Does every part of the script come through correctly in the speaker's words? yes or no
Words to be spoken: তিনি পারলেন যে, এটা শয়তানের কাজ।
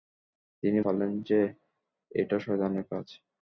yes